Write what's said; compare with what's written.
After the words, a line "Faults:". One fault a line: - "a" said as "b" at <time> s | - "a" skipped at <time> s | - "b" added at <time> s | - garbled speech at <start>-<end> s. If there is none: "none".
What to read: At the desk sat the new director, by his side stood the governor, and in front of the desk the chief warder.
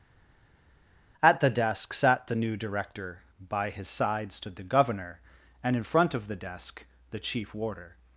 At the desk sat the new director, by his side stood the governor, and in front of the desk the chief warder.
Faults:
none